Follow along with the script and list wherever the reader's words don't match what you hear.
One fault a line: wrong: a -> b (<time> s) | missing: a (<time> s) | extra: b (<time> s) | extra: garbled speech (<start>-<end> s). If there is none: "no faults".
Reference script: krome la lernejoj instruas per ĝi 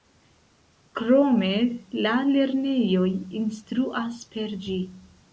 no faults